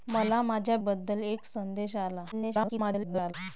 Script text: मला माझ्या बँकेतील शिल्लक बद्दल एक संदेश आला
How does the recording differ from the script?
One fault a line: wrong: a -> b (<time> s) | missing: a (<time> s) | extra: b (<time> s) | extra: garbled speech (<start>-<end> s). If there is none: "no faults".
missing: बँकेतील शिल्लक (0.8 s)
extra: garbled speech (2.3-3.3 s)